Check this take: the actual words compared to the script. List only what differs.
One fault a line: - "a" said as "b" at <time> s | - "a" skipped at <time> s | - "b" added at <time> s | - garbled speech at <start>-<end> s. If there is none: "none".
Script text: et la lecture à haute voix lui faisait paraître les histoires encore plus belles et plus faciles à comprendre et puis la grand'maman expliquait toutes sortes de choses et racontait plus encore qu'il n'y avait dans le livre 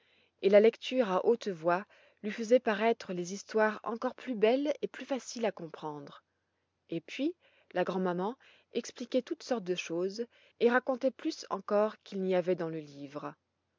none